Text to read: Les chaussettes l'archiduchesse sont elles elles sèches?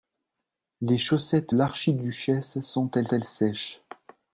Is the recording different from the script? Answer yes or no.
no